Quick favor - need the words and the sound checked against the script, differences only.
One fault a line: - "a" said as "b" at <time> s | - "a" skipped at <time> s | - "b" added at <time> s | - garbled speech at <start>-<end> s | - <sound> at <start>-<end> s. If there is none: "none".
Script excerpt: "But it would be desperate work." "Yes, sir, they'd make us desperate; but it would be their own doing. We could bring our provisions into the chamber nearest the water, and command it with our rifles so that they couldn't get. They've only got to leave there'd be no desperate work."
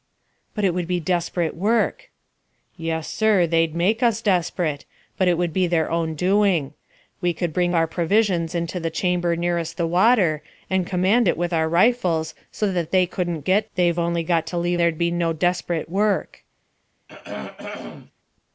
- throat clearing at 17.1-18.1 s